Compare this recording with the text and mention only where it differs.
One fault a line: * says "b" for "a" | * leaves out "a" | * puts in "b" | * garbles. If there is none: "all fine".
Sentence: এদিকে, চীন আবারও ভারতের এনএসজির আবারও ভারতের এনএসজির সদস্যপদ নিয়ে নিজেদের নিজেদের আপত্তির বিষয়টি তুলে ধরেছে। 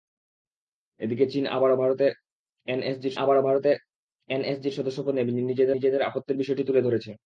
all fine